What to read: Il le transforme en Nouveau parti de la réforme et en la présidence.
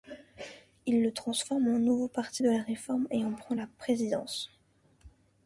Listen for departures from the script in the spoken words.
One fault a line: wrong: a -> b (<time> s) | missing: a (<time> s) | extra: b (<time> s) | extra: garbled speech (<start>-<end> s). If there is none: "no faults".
extra: prend (3.3 s)